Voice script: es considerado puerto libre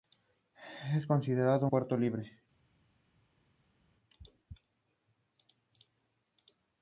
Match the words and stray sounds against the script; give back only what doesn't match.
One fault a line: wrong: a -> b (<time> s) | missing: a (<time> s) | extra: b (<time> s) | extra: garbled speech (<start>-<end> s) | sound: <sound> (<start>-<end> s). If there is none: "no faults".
no faults